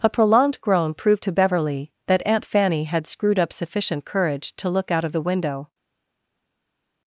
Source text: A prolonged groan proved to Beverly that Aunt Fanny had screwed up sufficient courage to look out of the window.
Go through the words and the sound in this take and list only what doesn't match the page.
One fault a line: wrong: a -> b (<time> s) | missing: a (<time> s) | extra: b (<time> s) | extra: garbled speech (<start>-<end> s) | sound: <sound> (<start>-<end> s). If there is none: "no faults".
no faults